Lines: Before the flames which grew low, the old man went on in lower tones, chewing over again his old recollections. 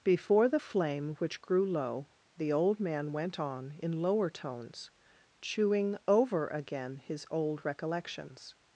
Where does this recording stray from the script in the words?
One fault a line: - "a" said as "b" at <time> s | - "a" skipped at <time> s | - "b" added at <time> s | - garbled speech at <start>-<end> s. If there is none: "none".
- "flames" said as "flame" at 0.6 s